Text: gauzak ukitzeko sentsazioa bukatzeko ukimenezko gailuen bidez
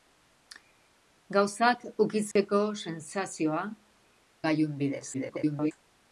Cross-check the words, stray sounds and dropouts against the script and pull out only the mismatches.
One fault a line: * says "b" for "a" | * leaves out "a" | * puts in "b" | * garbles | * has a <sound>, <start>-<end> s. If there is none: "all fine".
* has a dropout, 2.3-2.4 s
* leaves out "bukatzeko ukimenezko"
* garbles